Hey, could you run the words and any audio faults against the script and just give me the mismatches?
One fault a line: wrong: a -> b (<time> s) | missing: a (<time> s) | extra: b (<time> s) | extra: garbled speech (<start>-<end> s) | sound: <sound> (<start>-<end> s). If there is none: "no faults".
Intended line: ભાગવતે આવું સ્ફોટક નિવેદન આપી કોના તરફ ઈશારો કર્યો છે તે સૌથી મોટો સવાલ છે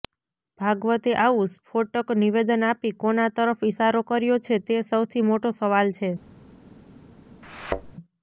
sound: thud (7.4-7.9 s)